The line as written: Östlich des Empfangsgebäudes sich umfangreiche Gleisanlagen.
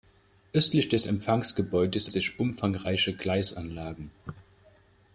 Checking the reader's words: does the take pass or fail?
pass